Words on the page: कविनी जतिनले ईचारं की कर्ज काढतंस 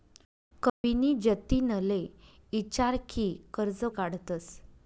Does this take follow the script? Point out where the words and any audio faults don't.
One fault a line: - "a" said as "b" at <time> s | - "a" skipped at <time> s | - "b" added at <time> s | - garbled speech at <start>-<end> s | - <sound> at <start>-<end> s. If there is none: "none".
- dropout at 0.7-0.8 s